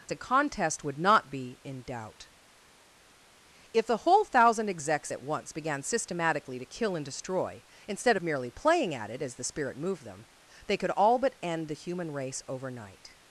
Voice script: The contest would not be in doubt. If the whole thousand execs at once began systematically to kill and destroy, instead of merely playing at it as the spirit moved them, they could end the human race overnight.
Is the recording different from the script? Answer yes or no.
yes